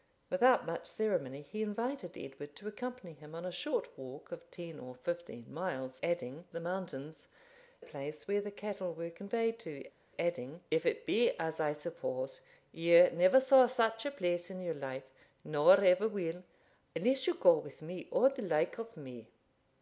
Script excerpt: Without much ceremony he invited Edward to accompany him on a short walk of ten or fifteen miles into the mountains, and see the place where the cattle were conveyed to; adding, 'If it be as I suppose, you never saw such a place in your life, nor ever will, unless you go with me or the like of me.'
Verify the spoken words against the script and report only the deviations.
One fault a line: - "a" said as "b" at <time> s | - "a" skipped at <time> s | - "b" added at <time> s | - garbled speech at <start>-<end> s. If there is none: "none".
- "into" said as "adding" at 6.0 s
- "and see the" skipped at 7.3 s